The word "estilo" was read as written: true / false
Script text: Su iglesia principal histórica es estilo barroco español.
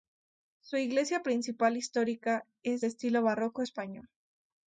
true